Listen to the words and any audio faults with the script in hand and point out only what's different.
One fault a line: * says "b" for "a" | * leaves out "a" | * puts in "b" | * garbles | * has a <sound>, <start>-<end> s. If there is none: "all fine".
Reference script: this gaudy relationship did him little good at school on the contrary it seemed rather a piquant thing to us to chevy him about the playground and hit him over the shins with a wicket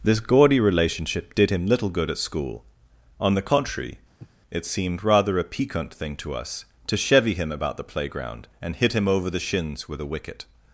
* has a sniff, 4.2-4.3 s